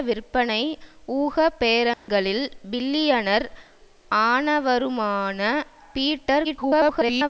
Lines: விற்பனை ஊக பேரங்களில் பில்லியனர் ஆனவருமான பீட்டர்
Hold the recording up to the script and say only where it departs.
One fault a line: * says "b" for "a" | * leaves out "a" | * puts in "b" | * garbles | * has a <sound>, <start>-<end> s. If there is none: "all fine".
* has a dropout, 1.9-2.1 s
* garbles